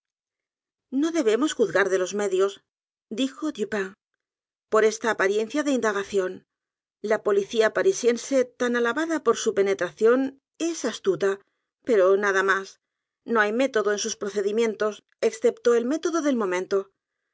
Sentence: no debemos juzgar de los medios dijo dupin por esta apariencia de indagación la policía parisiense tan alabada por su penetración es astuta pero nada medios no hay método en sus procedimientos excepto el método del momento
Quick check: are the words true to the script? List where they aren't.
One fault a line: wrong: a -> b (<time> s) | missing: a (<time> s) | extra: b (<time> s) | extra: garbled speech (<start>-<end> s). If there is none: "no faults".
wrong: medios -> más (12.4 s)